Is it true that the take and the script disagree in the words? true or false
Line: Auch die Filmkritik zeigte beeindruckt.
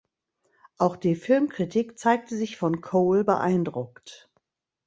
true